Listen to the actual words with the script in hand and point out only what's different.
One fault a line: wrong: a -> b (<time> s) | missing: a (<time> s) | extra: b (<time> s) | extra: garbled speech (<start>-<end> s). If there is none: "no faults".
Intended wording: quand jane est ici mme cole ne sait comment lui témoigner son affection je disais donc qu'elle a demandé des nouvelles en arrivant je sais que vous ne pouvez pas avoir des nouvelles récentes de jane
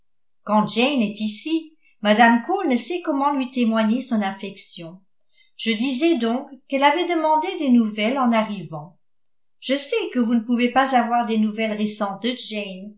wrong: a -> avait (6.8 s)